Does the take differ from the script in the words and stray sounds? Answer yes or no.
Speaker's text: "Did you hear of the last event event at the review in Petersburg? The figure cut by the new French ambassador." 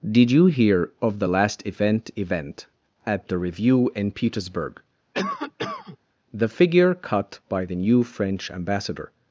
yes